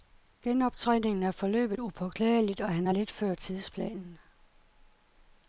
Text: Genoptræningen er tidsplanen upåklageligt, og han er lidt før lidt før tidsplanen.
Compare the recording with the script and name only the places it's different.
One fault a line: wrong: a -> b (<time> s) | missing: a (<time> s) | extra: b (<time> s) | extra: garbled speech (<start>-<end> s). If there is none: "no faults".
wrong: tidsplanen -> forløbet (1.3 s)
missing: lidt før (3.3 s)